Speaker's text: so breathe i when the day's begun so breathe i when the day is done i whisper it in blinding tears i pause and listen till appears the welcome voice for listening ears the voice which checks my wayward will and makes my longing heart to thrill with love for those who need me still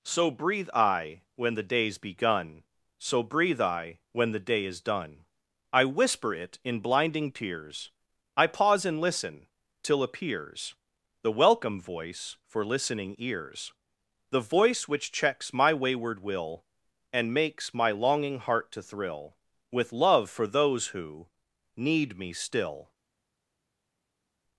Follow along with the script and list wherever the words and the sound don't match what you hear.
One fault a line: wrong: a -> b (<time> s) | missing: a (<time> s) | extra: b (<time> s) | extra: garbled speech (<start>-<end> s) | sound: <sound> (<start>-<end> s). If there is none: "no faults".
no faults